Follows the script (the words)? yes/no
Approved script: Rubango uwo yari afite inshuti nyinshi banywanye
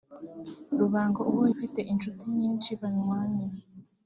no